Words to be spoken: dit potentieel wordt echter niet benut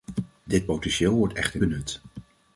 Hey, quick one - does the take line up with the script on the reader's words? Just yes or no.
no